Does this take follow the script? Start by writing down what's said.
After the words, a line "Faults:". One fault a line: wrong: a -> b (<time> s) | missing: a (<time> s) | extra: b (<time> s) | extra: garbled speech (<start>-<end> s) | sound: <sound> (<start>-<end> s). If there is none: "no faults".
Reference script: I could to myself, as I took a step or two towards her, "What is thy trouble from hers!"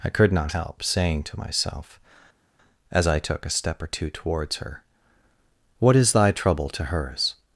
I could not help saying to myself, as I took a step or two towards her, "What is thy trouble to hers!"
Faults:
extra: not help saying (0.3 s)
wrong: from -> to (6.7 s)